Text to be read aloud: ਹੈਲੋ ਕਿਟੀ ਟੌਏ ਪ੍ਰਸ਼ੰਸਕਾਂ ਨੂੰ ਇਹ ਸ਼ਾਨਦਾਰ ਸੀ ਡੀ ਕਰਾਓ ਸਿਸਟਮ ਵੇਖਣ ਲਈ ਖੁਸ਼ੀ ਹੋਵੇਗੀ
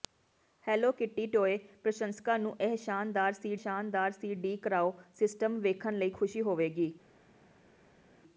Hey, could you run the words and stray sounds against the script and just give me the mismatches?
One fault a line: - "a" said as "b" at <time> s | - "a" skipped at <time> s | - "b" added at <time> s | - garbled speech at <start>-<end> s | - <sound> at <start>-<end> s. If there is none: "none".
- "ਸ਼ਾਨਦਾਰ ਸੀ" added at 3.5 s